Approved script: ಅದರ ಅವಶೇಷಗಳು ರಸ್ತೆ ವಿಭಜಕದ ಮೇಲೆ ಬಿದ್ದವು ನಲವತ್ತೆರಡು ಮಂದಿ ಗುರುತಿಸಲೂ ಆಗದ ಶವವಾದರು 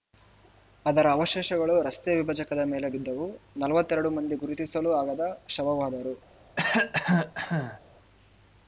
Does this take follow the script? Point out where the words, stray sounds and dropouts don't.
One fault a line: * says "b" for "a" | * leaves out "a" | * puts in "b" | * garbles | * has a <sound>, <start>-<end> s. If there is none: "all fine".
* has a cough, 6.6-7.8 s